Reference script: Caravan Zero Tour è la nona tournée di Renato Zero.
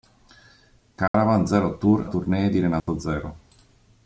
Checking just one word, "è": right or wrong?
wrong